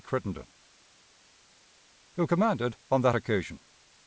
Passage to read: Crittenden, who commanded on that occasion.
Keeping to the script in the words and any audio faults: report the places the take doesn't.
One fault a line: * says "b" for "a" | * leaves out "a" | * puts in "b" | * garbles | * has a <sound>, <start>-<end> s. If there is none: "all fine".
all fine